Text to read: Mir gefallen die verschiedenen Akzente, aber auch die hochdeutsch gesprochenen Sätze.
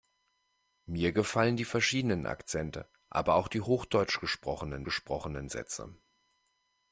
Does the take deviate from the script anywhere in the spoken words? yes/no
yes